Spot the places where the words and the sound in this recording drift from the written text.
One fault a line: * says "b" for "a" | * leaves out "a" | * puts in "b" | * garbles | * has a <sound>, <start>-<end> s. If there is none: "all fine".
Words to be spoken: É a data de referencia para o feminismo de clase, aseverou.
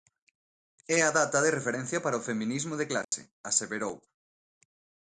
* has a dropout, 3.0-3.1 s